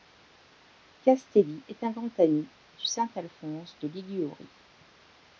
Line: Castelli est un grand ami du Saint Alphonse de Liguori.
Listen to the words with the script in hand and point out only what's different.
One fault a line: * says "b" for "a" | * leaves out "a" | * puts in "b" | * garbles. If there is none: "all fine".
all fine